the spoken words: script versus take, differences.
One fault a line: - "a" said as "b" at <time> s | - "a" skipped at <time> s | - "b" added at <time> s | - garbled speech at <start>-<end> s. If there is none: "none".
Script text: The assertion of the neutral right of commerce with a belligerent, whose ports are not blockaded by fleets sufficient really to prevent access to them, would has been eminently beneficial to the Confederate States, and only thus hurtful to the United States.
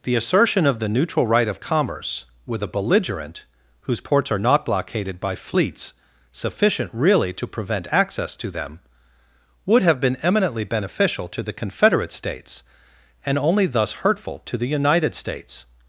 - "has" said as "have" at 9.8 s